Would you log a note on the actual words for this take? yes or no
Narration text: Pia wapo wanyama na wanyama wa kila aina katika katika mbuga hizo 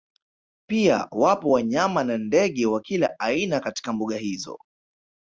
yes